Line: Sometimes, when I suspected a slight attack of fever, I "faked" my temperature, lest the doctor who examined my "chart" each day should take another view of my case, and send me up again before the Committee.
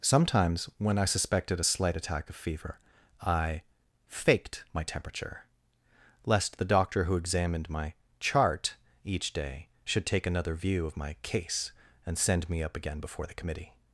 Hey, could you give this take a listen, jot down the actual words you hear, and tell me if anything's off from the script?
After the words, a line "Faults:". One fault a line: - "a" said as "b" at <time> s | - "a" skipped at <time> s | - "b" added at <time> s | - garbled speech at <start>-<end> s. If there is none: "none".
Sometimes, when I suspected a slight attack of fever, I "faked" my temperature, lest the doctor who examined my "chart" each day should take another view of my case, and send me up again before the Committee.
Faults:
none